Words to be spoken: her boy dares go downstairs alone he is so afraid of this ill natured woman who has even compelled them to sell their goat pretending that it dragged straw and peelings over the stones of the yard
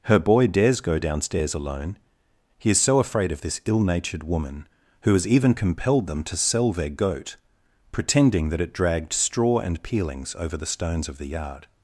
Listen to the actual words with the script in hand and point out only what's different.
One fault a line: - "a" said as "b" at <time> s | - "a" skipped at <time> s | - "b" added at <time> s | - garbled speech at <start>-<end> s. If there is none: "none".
none